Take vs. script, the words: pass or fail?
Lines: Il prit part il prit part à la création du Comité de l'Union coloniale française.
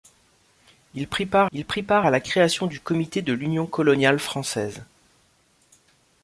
pass